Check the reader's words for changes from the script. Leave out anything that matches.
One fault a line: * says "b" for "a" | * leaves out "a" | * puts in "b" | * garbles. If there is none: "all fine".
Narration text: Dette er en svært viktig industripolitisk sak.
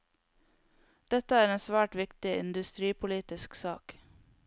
all fine